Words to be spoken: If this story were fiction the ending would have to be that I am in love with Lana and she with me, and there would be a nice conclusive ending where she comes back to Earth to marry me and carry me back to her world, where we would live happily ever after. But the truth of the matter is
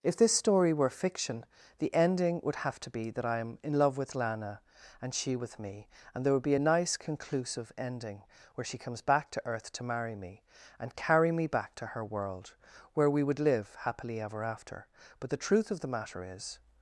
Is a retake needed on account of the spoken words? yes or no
no